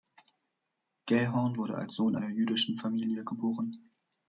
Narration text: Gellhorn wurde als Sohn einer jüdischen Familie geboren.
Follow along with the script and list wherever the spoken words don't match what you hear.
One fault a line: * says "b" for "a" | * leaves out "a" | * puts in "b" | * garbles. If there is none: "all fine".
all fine